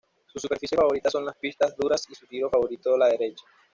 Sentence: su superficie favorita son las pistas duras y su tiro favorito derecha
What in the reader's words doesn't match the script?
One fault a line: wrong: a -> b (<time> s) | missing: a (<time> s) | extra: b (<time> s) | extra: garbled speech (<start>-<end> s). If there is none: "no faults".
extra: la (3.0 s)